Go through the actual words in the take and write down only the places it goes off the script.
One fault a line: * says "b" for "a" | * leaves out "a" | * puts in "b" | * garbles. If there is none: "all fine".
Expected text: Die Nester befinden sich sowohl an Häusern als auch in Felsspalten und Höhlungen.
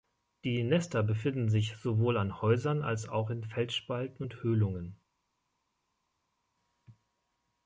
all fine